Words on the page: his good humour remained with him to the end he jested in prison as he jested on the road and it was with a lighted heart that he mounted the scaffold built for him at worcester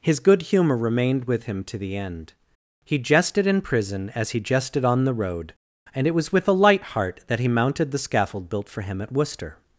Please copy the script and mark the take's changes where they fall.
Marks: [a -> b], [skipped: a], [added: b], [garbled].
his good humour remained with him to the end he jested in prison as he jested on the road and it was with a [lighted -> light] heart that he mounted the scaffold built for him at worcester